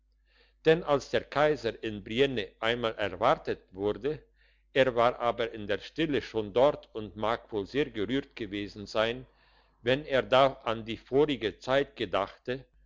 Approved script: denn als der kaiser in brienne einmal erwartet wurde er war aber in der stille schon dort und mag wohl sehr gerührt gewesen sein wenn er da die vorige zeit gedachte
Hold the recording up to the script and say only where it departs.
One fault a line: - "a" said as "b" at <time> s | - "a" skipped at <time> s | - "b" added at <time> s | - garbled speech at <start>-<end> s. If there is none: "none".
- "an" added at 10.6 s